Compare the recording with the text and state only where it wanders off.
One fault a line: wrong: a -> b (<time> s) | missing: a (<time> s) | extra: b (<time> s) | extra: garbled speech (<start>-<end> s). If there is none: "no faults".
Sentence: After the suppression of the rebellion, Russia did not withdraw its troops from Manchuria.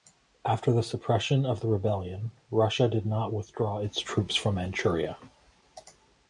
no faults